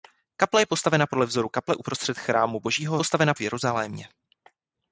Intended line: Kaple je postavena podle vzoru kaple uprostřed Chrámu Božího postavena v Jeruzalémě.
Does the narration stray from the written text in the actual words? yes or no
no